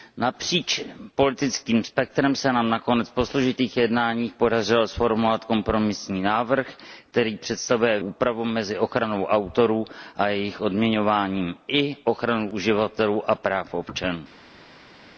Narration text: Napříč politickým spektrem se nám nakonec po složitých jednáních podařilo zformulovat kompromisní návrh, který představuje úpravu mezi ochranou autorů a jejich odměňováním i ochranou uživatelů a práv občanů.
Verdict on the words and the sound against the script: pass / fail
pass